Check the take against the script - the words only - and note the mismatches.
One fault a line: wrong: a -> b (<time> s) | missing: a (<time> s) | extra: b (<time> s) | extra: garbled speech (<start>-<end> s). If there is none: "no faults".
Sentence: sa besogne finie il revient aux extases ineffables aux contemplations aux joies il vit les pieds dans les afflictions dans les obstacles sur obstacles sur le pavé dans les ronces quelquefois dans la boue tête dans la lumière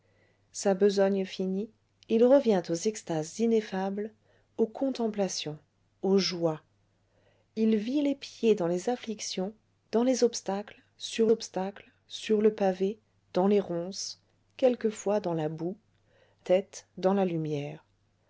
no faults